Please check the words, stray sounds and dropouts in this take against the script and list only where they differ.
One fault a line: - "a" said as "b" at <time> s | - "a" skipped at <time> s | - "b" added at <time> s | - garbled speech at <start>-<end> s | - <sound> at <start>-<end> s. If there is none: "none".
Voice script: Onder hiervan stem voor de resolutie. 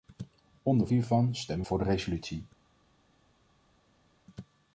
none